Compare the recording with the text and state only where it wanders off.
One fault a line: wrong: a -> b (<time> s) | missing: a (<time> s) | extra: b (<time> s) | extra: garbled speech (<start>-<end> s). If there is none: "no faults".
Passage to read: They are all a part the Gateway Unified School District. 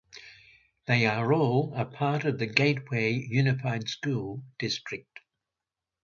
extra: of (2.2 s)